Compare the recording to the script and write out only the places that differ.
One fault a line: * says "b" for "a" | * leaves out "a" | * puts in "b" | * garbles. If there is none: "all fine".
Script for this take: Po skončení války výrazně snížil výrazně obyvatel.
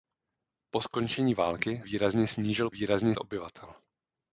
all fine